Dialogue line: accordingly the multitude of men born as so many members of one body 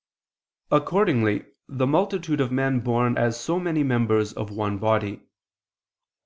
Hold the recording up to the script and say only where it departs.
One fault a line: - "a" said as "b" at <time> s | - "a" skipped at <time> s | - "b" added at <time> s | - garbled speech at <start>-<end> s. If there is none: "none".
none